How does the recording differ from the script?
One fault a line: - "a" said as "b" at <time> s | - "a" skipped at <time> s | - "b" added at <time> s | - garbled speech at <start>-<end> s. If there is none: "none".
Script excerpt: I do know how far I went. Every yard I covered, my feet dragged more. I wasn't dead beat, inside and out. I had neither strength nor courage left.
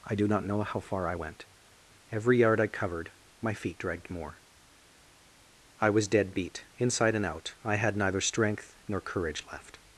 - "not" added at 0.3 s
- "wasn't" said as "was" at 5.9 s